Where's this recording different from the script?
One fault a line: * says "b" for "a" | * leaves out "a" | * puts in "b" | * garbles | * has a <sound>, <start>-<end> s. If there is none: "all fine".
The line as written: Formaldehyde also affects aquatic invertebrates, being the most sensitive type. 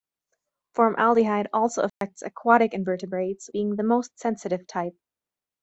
* has a dropout, 1.9-2.0 s